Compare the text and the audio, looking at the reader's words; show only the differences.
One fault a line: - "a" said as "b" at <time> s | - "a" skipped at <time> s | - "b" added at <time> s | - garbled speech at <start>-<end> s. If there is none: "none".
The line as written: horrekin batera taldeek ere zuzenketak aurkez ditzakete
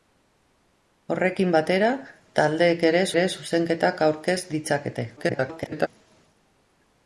- "ere" added at 3.1 s
- garbled speech at 5.2-5.9 s